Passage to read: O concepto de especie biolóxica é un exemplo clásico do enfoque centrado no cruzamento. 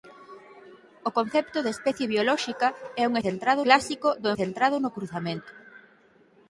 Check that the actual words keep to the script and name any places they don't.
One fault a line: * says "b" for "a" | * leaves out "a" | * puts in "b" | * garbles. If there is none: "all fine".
* says "centrado" for "exemplo"
* leaves out "enfoque"